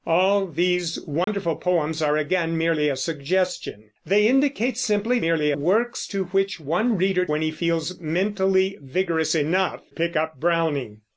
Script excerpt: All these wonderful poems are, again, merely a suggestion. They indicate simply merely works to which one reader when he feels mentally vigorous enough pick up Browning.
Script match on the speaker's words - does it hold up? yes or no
yes